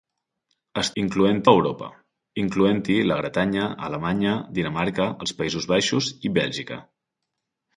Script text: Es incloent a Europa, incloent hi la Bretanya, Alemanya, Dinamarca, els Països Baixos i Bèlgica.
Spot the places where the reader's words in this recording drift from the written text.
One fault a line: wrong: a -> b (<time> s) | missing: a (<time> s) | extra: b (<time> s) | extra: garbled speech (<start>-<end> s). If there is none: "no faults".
no faults